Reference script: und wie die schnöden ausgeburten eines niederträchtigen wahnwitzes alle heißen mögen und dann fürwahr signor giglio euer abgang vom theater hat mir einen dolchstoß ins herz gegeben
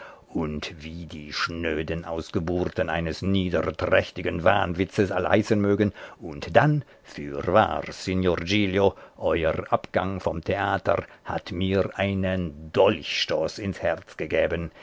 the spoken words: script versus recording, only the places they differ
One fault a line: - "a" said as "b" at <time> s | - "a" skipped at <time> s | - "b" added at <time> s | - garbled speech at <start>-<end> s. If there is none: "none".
none